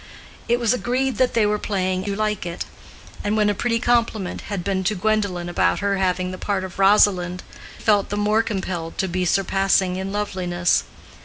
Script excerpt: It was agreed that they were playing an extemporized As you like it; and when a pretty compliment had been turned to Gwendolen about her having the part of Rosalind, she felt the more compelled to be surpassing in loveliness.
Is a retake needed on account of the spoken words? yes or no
yes